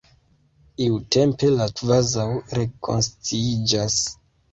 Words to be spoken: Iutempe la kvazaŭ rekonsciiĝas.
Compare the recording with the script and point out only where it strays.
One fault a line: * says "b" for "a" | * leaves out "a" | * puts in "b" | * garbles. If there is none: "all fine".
all fine